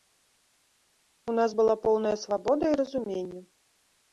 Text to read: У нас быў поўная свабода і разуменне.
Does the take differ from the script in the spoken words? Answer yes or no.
yes